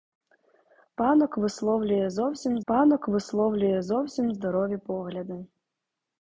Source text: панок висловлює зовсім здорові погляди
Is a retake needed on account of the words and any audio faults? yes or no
yes